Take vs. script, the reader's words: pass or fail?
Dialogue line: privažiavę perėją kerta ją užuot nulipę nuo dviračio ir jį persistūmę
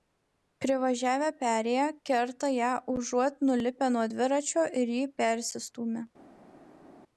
pass